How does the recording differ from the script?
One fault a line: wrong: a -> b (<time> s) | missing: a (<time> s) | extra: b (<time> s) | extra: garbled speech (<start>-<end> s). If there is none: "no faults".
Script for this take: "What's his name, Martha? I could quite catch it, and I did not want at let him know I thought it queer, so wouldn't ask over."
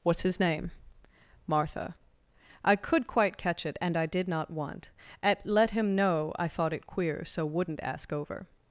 no faults